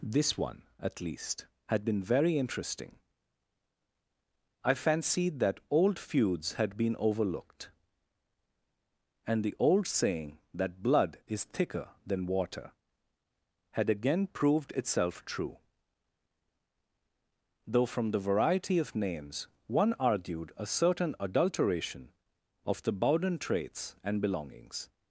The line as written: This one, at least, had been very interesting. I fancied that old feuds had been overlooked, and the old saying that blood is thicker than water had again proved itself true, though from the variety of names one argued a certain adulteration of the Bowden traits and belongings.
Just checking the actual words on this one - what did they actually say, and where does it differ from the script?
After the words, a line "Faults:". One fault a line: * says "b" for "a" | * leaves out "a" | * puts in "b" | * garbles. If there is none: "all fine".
This one, at least, had been very interesting. I fancied that old feuds had been overlooked, and the old saying that blood is thicker than water had again proved itself true, though from the variety of names one argued a certain adulteration of the Bowden traits and belongings.
Faults:
all fine